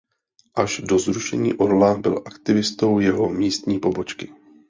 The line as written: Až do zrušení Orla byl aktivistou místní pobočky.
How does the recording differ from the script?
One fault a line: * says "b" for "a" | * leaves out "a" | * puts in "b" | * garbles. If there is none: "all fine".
* puts in "jeho"